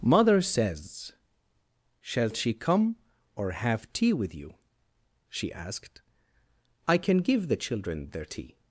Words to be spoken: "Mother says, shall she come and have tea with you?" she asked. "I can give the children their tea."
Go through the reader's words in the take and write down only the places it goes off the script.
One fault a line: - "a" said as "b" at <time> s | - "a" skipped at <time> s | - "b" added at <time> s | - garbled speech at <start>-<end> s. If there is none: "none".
- "and" said as "or" at 3.4 s